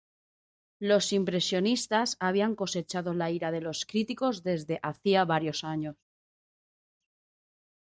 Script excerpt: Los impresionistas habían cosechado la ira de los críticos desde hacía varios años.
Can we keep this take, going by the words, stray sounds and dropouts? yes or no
yes